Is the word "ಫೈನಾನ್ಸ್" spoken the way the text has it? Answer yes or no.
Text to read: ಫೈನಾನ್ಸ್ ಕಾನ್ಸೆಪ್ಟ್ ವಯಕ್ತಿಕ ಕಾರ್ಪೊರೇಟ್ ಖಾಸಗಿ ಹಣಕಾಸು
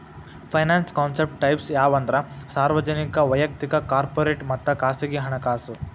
yes